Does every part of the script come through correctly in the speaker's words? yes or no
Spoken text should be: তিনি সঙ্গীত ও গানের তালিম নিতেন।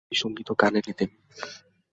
no